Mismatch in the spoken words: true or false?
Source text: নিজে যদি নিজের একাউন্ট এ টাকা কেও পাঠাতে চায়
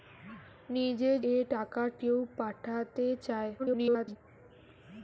true